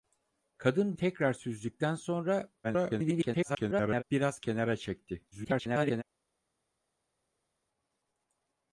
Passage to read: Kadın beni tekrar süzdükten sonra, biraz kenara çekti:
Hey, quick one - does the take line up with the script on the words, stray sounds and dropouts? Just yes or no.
no